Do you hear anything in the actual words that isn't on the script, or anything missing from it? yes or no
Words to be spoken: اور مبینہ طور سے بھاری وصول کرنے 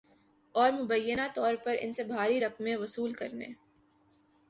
yes